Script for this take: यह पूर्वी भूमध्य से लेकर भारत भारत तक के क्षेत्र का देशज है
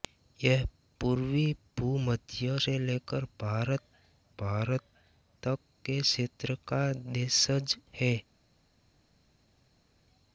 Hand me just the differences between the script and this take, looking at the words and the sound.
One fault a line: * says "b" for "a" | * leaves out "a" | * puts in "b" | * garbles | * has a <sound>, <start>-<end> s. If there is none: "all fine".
all fine